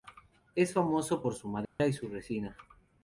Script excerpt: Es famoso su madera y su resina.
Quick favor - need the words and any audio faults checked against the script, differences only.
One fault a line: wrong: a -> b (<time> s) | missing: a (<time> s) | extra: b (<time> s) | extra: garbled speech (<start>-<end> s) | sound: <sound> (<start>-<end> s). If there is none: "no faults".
extra: por (1.2 s)
sound: dropout (1.7-1.8 s)